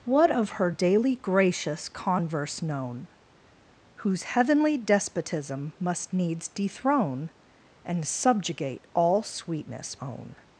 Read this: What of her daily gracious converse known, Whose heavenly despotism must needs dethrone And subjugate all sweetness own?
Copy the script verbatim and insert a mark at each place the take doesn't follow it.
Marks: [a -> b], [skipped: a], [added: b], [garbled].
What of her daily gracious converse known, Whose heavenly despotism must needs dethrone And subjugate all sweetness own?